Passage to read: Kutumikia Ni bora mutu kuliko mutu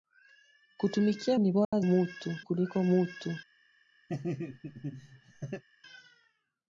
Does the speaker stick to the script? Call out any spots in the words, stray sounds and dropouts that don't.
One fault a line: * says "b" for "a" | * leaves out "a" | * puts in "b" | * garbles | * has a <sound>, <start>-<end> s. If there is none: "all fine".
* has a dropout, 1.6-1.7 s
* has a laugh, 4.1-5.6 s